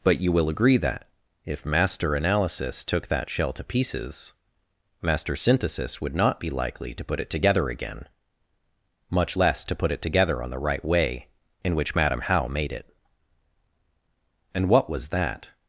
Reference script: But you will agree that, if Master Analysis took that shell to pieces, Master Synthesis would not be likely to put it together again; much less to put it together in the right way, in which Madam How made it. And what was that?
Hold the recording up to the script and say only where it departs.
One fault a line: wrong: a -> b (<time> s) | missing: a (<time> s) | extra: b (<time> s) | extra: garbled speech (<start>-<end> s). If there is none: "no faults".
wrong: in -> on (10.4 s)